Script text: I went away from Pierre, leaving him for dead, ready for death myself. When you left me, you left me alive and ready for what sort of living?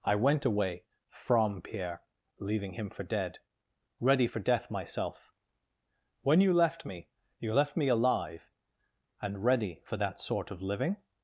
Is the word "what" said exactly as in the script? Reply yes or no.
no